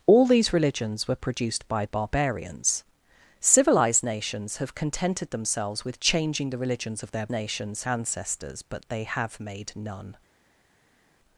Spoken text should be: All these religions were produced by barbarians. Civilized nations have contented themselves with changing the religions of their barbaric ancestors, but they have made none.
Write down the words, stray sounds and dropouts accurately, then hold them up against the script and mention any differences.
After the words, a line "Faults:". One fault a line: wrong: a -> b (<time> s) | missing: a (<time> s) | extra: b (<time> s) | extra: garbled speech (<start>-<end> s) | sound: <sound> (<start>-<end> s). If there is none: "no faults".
All these religions were produced by barbarians. Civilized nations have contented themselves with changing the religions of their nations ancestors, but they have made none.
Faults:
wrong: barbaric -> nations (7.3 s)